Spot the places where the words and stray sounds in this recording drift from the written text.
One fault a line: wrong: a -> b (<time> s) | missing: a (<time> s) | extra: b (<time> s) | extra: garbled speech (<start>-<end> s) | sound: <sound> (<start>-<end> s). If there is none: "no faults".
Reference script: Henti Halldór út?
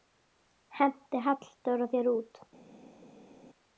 extra: þér (1.9 s)